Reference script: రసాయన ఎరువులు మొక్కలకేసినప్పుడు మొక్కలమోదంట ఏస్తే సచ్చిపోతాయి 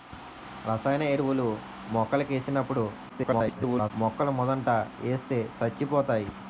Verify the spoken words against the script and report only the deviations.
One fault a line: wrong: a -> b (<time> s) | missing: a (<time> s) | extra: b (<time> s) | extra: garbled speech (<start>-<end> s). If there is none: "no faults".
extra: garbled speech (3.1-3.9 s)